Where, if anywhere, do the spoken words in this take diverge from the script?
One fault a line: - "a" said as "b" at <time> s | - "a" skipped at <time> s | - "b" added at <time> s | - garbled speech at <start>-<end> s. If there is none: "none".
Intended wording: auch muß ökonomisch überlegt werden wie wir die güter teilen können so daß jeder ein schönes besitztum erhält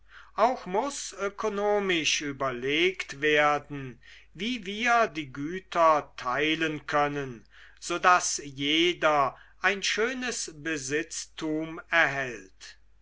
none